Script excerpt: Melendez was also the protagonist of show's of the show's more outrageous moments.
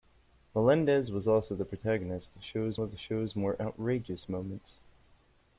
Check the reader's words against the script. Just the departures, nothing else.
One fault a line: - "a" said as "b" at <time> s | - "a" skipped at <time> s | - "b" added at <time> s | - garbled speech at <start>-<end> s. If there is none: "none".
none